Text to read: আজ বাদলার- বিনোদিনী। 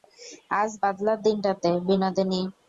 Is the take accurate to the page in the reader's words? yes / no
no